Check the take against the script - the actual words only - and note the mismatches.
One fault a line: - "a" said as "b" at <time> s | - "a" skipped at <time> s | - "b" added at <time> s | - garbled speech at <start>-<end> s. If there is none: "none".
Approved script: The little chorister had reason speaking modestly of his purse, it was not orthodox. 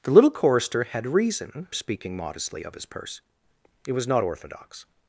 none